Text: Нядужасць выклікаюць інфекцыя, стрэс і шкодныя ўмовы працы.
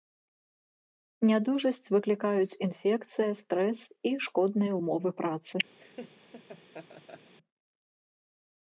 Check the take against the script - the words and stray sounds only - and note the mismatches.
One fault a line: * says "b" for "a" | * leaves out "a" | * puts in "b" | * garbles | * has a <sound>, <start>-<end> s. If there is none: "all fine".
* has a laugh, 5.8-7.3 s